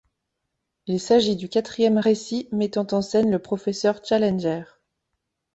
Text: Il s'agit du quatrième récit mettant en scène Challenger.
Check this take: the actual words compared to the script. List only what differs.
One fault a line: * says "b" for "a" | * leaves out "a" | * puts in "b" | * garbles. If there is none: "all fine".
* puts in "le professeur"